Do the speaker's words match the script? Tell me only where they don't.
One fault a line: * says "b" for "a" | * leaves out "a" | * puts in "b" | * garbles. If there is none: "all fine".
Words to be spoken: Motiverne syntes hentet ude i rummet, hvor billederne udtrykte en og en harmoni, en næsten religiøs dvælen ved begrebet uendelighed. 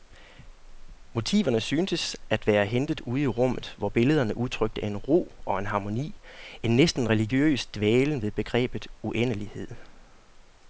* puts in "at være"
* puts in "ro"